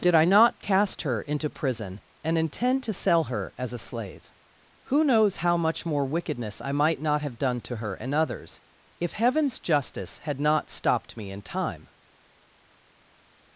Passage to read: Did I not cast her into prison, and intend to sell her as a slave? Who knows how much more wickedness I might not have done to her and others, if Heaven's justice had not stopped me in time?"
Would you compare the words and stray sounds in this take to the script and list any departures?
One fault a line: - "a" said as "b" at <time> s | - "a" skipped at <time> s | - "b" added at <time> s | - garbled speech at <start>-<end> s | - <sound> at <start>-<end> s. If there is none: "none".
none